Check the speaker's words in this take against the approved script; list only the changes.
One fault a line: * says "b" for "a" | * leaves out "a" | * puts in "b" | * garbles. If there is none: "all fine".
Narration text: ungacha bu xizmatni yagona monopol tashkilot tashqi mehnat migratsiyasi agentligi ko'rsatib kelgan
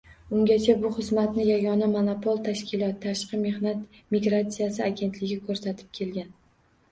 all fine